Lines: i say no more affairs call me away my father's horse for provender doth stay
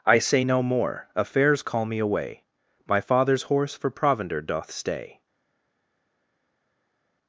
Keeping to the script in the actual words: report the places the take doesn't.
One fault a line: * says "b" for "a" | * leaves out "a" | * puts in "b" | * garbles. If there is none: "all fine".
all fine